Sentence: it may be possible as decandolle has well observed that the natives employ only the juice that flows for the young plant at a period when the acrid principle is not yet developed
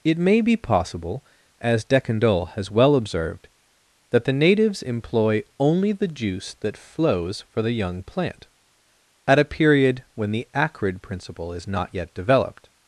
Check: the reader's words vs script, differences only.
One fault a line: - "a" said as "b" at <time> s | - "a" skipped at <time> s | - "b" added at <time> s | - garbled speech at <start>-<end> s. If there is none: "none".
none